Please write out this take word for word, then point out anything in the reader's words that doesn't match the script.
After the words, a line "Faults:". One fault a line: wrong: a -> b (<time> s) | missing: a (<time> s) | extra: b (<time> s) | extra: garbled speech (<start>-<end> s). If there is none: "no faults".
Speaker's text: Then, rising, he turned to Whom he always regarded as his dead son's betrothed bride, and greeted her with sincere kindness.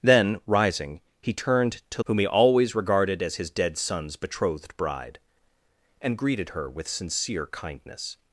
Then, rising, he turned to Whom he always regarded as his dead son's betrothed bride, and greeted her with sincere kindness.
Faults:
no faults